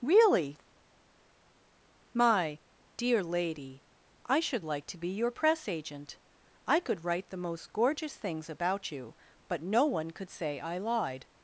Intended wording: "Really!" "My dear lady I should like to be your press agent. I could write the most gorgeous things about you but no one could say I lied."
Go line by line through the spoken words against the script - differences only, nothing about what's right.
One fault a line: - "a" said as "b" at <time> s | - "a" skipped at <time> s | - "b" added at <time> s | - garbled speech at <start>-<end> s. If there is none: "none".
none